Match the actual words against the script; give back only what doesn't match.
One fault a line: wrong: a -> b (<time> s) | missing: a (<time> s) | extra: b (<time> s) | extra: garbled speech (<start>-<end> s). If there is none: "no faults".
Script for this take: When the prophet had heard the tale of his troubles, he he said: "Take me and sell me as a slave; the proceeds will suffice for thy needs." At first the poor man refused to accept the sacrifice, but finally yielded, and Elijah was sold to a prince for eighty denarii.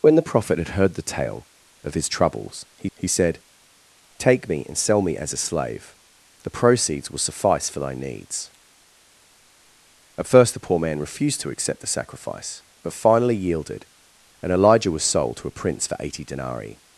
no faults